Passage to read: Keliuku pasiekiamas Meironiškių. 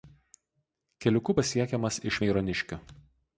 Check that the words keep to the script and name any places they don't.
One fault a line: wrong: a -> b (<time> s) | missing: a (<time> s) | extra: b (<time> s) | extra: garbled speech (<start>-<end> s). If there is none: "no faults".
extra: iš (2.1 s)